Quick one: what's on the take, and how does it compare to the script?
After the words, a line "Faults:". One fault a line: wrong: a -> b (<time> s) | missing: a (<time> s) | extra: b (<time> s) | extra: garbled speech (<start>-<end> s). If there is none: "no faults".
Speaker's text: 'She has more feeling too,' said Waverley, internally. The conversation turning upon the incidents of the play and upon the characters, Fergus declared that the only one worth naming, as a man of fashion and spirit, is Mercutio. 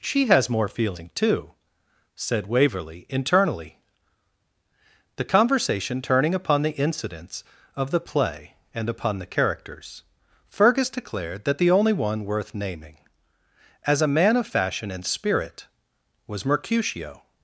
'She has more feeling too,' said Waverley, internally. The conversation turning upon the incidents of the play and upon the characters, Fergus declared that the only one worth naming, as a man of fashion and spirit, was Mercutio.
Faults:
wrong: is -> was (16.3 s)